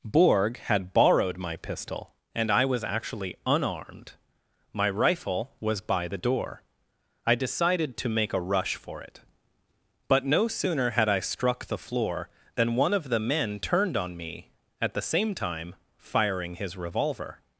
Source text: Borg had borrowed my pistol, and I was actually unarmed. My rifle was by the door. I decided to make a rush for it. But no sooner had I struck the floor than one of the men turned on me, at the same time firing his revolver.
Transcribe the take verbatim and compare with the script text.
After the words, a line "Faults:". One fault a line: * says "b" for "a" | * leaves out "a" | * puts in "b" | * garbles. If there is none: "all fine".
Borg had borrowed my pistol, and I was actually unarmed. My rifle was by the door. I decided to make a rush for it. But no sooner had I struck the floor than one of the men turned on me, at the same time firing his revolver.
Faults:
all fine